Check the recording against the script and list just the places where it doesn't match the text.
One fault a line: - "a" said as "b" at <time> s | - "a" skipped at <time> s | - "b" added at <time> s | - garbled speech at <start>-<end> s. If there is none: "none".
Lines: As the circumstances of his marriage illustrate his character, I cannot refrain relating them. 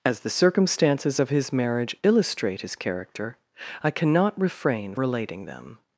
none